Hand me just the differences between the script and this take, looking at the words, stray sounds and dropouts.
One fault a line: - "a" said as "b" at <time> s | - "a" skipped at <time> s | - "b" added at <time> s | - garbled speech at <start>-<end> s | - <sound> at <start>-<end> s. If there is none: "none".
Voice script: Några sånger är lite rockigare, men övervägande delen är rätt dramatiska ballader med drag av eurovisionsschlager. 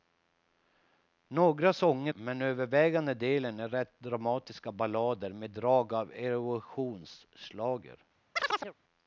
- "är lite rockigare" skipped at 2.1 s
- chirp at 8.4-8.7 s